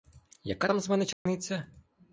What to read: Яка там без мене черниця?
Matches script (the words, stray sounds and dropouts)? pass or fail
fail